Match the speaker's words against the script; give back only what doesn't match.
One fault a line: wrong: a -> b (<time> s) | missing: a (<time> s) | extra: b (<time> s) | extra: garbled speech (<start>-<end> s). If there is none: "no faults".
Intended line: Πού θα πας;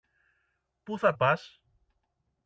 no faults